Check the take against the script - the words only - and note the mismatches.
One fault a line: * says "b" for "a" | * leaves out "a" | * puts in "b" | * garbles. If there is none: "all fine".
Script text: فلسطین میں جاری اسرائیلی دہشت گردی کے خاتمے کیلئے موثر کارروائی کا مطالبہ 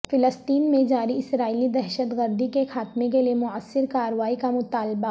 all fine